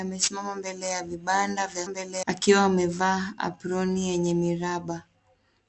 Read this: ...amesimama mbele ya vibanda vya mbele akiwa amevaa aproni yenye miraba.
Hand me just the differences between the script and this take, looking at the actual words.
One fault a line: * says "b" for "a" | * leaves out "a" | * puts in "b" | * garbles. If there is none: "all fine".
all fine